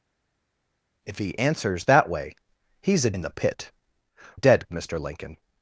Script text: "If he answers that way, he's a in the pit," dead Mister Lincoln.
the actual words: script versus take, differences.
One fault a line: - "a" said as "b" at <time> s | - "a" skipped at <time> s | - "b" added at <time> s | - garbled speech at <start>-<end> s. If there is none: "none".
none